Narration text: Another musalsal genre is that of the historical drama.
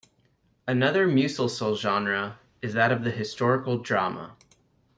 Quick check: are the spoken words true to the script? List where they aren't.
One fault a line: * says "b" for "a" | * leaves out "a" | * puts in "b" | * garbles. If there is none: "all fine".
all fine